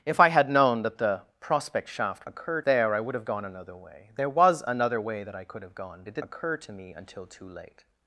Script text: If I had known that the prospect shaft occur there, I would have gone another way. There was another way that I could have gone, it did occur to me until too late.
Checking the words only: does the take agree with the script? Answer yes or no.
yes